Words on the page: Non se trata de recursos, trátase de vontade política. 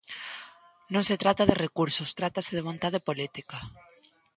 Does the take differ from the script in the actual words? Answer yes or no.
no